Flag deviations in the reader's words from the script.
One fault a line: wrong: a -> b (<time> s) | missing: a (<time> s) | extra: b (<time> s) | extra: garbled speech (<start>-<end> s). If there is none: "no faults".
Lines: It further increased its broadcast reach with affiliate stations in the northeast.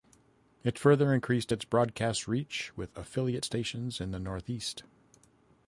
no faults